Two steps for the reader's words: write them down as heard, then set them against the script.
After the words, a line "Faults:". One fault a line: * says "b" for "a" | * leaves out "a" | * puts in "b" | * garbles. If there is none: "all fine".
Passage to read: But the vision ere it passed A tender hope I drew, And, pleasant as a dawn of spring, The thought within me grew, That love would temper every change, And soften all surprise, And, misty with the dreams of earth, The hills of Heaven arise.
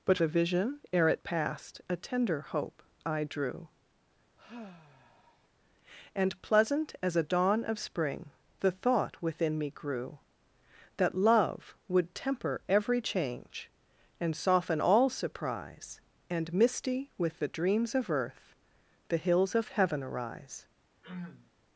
But the vision ere it passed A tender hope I drew, And, pleasant as a dawn of spring, The thought within me grew, That love would temper every change, And soften all surprise, And, misty with the dreams of earth, The hills of Heaven arise.
Faults:
all fine